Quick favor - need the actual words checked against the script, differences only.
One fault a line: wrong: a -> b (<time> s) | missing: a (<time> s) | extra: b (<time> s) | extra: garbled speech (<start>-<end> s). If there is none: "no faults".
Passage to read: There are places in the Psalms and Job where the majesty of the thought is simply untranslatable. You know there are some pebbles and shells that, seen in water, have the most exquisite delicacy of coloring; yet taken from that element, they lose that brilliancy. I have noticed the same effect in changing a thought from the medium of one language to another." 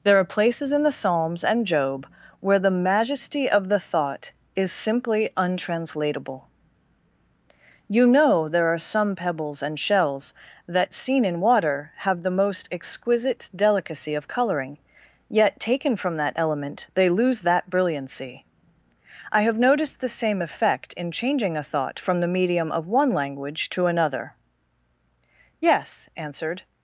extra: Yes answered (25.6 s)